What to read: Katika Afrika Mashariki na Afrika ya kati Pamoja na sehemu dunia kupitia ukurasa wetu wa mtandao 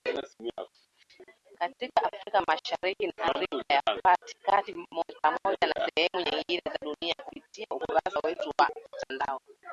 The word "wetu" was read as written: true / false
true